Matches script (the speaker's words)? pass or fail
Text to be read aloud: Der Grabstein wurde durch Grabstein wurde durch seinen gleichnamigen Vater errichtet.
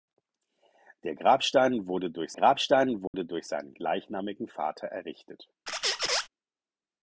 pass